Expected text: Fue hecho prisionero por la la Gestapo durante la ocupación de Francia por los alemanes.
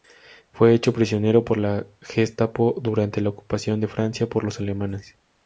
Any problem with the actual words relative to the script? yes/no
yes